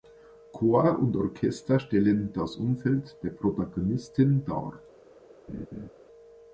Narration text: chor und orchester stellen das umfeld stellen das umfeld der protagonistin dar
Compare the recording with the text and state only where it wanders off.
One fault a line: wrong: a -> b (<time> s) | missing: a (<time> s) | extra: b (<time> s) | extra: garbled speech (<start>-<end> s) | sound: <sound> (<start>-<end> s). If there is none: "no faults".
missing: stellen das umfeld (3.2 s)
sound: laugh (5.5-5.9 s)